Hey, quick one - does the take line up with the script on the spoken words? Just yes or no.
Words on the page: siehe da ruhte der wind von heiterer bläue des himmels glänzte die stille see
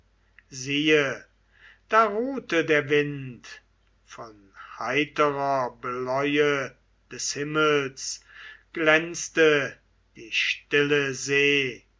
yes